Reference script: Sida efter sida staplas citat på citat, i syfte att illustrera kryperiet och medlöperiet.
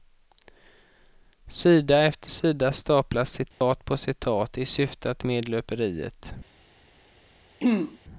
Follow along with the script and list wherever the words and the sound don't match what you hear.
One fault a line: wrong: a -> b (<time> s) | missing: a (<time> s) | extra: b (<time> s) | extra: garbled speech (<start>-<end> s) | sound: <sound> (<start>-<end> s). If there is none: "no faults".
sound: dropout (3.5-3.6 s)
missing: illustrera kryperiet och (5.2 s)
sound: throat clearing (7.6-8.0 s)